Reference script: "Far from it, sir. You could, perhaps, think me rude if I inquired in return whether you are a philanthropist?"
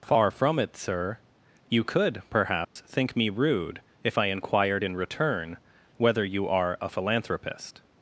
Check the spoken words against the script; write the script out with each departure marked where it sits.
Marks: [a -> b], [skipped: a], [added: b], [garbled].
"Far from it, sir. You could, perhaps, think me rude if I inquired in return whether you are a philanthropist?"